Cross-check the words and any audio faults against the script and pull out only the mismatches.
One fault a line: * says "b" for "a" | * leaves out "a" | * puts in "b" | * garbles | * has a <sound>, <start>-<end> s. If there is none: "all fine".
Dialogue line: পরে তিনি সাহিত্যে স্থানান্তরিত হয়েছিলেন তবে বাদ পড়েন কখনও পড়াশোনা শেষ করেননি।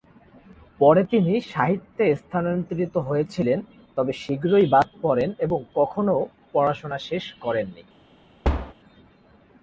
* puts in "শীঘ্রই"
* puts in "এবং"
* has a thud, 8.4-8.7 s